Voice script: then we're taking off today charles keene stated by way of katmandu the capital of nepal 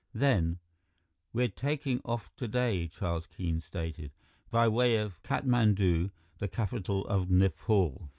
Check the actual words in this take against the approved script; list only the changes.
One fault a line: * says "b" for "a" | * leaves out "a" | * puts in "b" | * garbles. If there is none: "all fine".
all fine